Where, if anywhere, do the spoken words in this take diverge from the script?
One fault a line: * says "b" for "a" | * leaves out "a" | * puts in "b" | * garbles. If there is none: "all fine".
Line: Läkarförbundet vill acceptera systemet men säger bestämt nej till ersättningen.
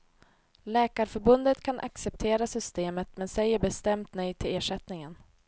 * says "kan" for "vill"